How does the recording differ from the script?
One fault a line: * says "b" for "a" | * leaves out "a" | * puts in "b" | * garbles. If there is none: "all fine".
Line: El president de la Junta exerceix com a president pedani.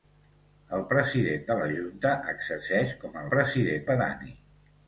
all fine